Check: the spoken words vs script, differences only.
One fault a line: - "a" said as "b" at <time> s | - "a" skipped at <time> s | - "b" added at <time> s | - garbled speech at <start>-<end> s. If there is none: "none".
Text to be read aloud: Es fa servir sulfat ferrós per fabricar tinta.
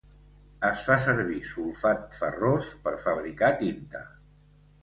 none